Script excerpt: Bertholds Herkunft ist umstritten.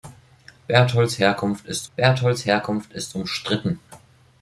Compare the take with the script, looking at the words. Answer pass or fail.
fail